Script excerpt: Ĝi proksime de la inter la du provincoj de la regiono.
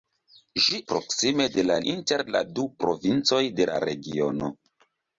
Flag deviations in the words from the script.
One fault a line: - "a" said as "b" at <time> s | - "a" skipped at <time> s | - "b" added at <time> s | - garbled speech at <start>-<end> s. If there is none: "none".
none